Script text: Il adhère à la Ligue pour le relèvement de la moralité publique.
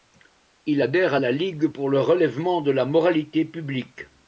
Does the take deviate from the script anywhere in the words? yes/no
no